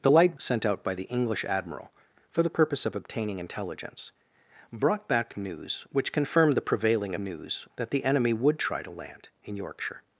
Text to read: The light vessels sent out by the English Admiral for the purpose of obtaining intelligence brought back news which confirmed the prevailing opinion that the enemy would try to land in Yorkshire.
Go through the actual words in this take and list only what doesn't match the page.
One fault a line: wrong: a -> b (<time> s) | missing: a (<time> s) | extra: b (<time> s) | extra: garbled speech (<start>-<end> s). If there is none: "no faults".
missing: vessels (0.4 s)
wrong: opinion -> news (7.2 s)